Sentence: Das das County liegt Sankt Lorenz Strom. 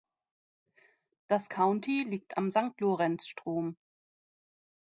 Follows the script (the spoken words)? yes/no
no